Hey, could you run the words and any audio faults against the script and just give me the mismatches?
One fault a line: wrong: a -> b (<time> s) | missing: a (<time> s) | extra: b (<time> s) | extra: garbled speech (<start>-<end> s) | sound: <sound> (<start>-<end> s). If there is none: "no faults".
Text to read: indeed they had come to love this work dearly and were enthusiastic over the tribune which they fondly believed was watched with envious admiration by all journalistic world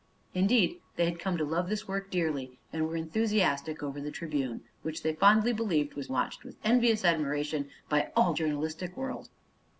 no faults